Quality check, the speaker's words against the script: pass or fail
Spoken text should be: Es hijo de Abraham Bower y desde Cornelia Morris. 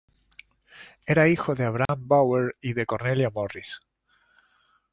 fail